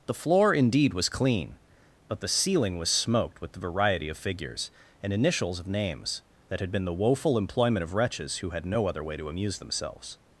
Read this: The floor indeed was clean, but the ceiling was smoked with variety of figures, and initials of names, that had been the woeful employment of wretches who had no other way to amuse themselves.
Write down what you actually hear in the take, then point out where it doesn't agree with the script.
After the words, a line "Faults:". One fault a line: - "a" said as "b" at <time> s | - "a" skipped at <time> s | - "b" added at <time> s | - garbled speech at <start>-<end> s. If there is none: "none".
The floor indeed was clean, but the ceiling was smoked with the variety of figures, and initials of names, that had been the woeful employment of wretches who had no other way to amuse themselves.
Faults:
- "the" added at 3.5 s